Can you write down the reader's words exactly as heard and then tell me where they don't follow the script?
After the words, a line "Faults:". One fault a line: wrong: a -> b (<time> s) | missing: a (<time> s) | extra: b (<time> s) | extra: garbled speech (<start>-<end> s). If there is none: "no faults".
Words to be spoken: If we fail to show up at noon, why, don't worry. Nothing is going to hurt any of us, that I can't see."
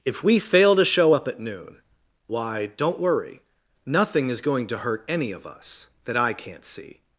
If we fail to show up at noon, why, don't worry. Nothing is going to hurt any of us, that I can't see."
Faults:
no faults